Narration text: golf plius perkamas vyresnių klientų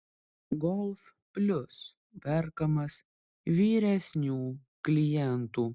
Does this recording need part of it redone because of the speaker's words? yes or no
no